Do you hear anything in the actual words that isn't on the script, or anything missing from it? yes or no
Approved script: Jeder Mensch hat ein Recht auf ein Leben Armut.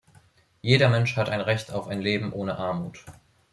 yes